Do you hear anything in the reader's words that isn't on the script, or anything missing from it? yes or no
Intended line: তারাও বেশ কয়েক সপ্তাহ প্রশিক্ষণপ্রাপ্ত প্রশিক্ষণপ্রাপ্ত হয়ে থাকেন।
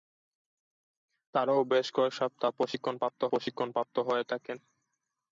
no